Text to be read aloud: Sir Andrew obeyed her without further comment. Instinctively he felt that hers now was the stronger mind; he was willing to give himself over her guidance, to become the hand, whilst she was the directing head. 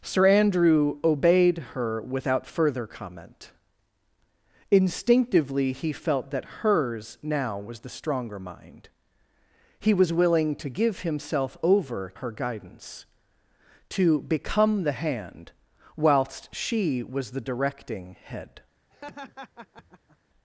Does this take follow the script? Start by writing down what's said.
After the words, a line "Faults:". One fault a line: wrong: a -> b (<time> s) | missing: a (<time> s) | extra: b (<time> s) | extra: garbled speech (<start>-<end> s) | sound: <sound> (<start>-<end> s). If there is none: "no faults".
Sir Andrew obeyed her without further comment. Instinctively he felt that hers now was the stronger mind; he was willing to give himself over her guidance, to become the hand, whilst she was the directing head.
Faults:
sound: laugh (18.9-20.2 s)